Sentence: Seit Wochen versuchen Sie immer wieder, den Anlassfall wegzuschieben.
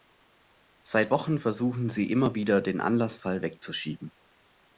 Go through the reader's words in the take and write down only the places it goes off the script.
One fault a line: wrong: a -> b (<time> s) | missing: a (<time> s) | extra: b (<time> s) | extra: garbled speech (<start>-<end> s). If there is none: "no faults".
no faults